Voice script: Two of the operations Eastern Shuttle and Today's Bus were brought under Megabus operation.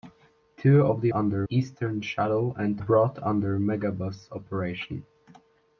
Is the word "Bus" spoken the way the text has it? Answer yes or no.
no